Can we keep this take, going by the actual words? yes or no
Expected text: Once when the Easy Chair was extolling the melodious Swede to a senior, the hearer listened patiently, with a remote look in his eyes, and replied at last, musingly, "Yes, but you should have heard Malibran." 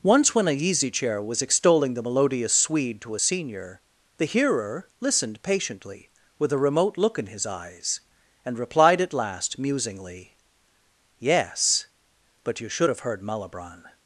no